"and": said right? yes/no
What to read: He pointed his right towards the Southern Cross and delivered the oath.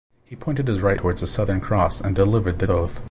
yes